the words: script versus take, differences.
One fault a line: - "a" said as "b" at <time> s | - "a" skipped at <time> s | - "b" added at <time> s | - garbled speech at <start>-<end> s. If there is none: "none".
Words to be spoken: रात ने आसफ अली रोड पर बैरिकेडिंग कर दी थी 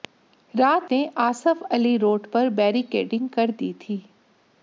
none